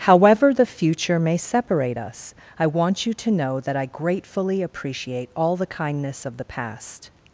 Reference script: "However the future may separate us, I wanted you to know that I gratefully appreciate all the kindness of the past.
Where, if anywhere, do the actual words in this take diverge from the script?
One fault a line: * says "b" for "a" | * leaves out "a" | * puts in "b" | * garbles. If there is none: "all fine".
* says "want" for "wanted"